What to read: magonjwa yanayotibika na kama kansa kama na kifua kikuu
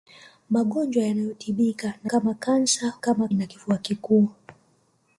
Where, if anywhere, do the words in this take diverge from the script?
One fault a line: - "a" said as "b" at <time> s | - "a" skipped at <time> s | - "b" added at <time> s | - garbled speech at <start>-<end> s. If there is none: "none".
none